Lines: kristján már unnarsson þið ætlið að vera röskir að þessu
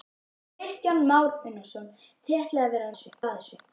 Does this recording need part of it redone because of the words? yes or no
yes